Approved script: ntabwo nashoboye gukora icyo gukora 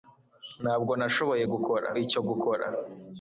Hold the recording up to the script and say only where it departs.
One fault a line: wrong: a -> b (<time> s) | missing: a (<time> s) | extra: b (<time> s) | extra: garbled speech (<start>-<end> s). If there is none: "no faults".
no faults